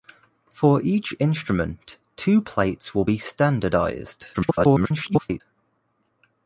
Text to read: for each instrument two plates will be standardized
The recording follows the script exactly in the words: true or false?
false